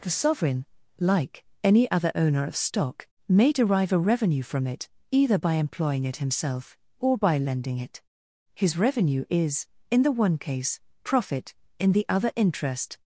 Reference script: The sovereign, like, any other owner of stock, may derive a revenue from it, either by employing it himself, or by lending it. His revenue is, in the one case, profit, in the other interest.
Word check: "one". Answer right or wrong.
right